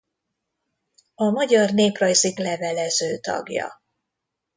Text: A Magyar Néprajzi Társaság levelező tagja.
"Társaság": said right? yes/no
no